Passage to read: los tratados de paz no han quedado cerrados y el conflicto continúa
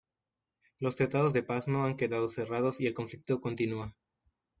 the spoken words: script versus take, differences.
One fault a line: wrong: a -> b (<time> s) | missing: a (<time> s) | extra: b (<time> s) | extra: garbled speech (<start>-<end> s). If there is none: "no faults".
no faults